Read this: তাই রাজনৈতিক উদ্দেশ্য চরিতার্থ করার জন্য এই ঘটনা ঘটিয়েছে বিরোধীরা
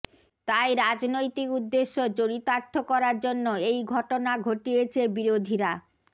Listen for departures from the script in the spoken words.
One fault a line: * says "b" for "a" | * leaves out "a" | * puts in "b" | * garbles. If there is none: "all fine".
all fine